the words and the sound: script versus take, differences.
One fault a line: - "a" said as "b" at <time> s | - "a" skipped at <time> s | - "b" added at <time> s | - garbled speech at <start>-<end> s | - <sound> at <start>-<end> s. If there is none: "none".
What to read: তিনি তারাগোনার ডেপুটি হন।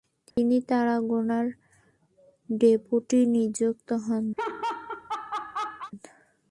- dropout at 0.3-0.4 s
- "নিযুক্ত" added at 3.3 s
- laugh at 4.4-5.9 s